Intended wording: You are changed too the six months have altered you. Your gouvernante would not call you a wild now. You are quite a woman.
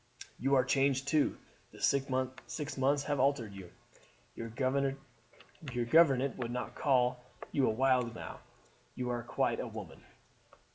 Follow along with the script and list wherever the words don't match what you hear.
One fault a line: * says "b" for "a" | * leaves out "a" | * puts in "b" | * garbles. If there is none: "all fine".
all fine